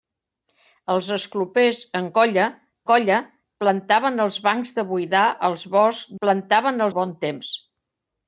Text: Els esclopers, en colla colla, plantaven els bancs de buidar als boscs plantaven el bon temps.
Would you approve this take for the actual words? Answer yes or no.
yes